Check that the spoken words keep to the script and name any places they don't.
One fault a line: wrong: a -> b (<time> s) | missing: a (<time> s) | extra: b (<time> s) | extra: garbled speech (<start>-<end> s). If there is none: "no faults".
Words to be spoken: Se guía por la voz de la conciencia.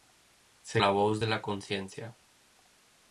missing: guía por (0.8 s)